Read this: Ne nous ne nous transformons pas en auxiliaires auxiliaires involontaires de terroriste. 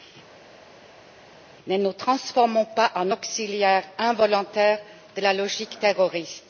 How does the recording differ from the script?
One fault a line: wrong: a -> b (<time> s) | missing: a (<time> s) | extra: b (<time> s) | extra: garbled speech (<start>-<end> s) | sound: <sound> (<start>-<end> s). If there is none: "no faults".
missing: ne nous (1.9 s)
missing: auxiliaires (3.8 s)
extra: la logique (5.2 s)